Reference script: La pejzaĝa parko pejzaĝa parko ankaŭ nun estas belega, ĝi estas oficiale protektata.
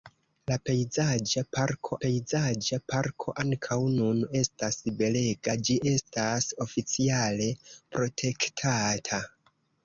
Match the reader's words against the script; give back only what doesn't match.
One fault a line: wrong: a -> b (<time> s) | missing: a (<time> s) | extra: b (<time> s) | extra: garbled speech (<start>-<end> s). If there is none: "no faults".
no faults